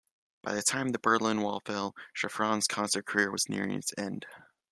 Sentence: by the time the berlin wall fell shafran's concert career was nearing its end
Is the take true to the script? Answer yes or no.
yes